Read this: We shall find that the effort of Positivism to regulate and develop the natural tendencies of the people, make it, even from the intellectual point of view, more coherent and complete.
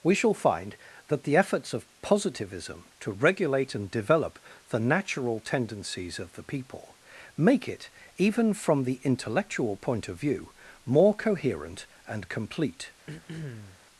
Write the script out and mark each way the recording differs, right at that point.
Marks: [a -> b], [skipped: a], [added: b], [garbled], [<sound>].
We shall find that the [effort -> efforts] of Positivism to regulate and develop the natural tendencies of the people, make it, even from the intellectual point of view, more coherent and complete. [throat clearing]